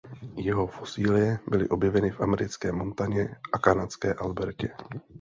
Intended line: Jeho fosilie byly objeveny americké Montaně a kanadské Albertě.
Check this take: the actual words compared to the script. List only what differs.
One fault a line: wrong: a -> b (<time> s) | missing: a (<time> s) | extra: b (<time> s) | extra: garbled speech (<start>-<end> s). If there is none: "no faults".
extra: v (2.1 s)